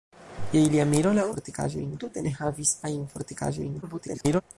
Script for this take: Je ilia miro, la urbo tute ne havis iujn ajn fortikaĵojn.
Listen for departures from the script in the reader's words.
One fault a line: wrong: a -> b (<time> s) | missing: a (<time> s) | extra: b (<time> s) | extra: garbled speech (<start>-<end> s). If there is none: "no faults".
wrong: urbo -> fortikaĵojn (1.3 s)
missing: iujn (2.7 s)
extra: garbled speech (3.8-4.4 s)